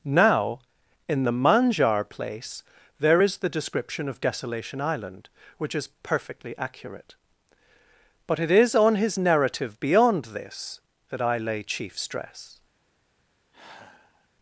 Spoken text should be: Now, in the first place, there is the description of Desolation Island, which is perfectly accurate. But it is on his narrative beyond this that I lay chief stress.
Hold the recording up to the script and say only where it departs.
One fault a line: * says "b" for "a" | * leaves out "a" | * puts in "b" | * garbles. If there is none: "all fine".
* says "manjar" for "first"